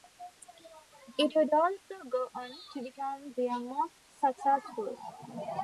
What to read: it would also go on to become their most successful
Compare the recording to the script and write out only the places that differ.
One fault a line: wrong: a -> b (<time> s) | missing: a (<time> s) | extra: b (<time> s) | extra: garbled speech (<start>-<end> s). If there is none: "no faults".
no faults